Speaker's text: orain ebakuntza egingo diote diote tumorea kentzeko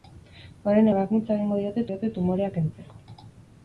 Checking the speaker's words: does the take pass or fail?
pass